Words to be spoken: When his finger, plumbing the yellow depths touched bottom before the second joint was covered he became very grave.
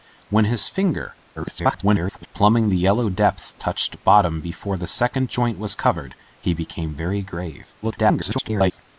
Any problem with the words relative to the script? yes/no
yes